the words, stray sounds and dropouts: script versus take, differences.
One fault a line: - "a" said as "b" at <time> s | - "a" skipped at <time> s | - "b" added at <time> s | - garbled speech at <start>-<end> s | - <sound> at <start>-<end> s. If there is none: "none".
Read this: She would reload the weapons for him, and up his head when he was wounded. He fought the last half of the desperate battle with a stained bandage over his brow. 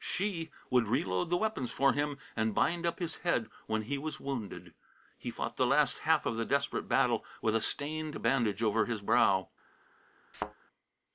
- "bind" added at 2.5 s
- thud at 10.3-10.5 s